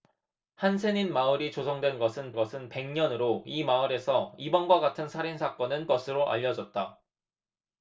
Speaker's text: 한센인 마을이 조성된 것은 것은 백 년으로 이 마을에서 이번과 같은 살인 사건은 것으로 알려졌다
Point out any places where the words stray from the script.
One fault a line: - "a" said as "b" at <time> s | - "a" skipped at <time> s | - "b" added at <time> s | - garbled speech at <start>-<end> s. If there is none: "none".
none